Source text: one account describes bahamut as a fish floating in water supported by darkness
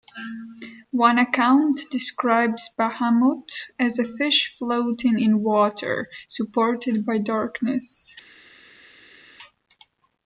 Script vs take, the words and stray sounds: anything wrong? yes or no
no